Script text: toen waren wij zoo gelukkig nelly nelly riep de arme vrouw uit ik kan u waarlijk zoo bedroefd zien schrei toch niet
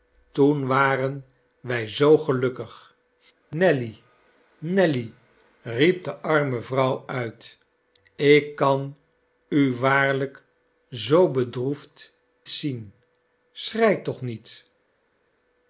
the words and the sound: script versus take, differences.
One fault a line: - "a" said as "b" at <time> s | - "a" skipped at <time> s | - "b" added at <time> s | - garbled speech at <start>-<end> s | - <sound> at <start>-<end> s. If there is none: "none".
none